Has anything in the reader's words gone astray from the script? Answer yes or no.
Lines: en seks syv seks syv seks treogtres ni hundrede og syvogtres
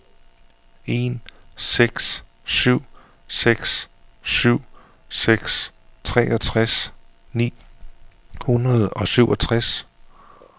no